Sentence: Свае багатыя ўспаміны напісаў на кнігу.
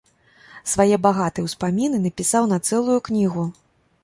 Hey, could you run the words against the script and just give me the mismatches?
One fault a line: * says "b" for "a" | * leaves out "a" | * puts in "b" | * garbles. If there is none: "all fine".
* puts in "цэлую"